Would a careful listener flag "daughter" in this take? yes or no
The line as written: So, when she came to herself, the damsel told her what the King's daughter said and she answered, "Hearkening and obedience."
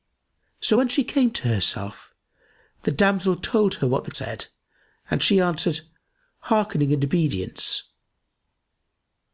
yes